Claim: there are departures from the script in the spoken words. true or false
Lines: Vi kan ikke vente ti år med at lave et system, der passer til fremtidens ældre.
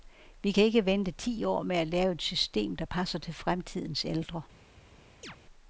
false